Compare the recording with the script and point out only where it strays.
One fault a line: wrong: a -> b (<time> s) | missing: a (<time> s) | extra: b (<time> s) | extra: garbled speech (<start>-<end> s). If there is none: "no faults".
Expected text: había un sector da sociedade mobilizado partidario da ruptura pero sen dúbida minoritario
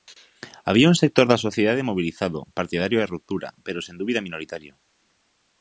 no faults